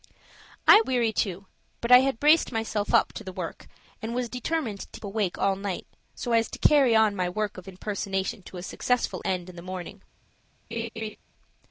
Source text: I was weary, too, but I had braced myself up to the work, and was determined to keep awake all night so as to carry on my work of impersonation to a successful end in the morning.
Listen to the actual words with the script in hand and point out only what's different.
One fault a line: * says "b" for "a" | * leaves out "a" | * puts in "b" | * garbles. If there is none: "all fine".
* leaves out "was"
* leaves out "keep"